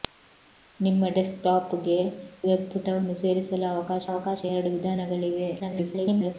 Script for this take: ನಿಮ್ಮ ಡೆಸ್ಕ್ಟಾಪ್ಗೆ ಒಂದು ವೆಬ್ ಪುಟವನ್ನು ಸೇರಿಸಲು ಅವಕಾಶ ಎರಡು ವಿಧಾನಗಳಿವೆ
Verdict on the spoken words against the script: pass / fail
fail